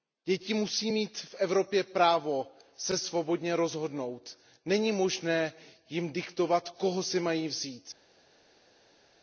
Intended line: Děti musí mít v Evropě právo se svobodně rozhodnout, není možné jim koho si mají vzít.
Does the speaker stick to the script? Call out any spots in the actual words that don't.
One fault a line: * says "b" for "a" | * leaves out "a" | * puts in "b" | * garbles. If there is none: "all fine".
* puts in "diktovat"